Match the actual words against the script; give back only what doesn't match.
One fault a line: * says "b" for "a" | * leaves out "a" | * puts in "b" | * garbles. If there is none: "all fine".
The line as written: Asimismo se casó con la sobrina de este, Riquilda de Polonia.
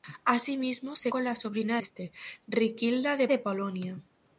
* leaves out "casó"
* leaves out "de"
* puts in "de"